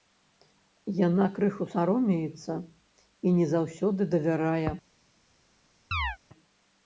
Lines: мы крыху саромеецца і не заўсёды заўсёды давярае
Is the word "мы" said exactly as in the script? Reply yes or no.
no